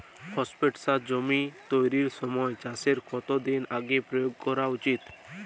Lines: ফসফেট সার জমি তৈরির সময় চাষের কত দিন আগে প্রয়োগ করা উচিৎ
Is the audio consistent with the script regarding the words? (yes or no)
yes